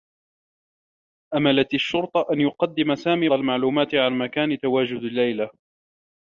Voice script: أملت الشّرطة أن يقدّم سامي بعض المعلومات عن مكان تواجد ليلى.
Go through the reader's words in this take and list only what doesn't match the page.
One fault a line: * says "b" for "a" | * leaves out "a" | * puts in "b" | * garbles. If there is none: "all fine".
* leaves out "بعض"